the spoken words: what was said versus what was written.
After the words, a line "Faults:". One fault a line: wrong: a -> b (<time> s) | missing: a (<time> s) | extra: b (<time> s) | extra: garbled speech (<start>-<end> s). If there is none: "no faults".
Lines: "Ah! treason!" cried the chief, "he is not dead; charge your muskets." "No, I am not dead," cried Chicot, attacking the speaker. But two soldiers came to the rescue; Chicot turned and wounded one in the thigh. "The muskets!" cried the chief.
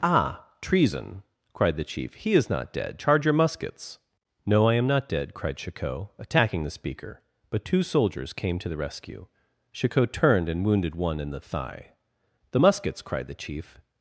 "Ah! treason!" cried the chief, "he is not dead; charge your muskets." "No, I am not dead," cried Chicot, attacking the speaker. But two soldiers came to the rescue; Chicot turned and wounded one in the thigh. "The muskets!" cried the chief.
Faults:
no faults